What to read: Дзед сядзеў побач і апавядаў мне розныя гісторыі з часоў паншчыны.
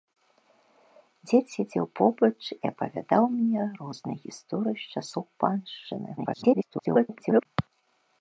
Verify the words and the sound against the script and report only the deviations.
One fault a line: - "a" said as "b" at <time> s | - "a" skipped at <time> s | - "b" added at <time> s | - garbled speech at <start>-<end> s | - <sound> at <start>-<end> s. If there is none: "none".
- garbled speech at 6.2-7.5 s